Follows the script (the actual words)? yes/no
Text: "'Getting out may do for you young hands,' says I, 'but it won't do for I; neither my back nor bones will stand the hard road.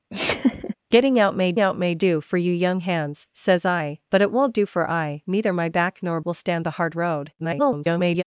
no